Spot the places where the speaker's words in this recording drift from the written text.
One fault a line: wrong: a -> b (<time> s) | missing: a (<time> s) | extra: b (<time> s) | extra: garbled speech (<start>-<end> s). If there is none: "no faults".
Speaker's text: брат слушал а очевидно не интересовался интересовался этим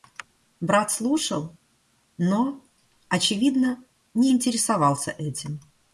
wrong: а -> но (2.2 s)
missing: интересовался (5.1 s)